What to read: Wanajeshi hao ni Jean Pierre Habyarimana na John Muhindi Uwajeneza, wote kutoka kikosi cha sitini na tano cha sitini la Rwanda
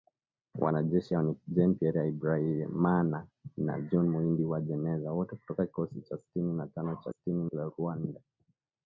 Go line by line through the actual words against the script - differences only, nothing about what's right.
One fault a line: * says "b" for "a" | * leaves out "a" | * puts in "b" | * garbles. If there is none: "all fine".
all fine